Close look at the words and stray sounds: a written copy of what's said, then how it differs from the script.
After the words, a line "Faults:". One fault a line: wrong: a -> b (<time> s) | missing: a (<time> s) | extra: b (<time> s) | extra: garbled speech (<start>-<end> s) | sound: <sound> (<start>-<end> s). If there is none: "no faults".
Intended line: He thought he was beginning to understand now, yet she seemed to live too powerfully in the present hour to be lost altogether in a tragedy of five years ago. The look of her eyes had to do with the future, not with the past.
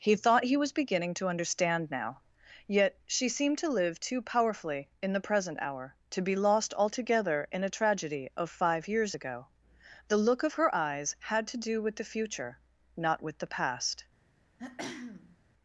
He thought he was beginning to understand now, yet she seemed to live too powerfully in the present hour to be lost altogether in a tragedy of five years ago. The look of her eyes had to do with the future, not with the past.
Faults:
sound: throat clearing (14.6-15.4 s)